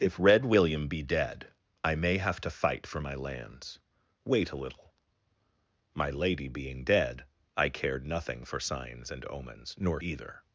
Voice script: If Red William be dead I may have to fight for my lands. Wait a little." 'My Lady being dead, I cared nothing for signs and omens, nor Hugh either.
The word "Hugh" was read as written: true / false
false